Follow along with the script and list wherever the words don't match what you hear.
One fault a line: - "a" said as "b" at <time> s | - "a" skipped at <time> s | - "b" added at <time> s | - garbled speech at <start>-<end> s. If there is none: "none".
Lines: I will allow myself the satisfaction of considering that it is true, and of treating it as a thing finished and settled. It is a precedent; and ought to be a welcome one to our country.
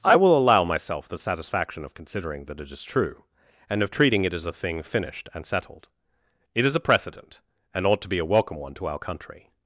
none